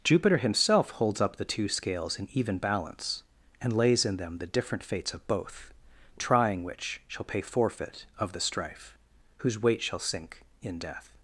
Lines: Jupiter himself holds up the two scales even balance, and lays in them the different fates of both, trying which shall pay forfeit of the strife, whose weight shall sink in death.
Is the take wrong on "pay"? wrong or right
right